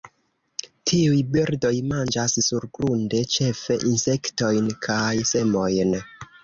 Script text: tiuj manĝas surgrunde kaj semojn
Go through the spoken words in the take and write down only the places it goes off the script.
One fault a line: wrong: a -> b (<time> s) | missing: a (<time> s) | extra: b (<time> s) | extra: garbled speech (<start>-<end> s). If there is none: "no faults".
extra: birdoj (1.4 s)
extra: ĉefe insektojn (3.4 s)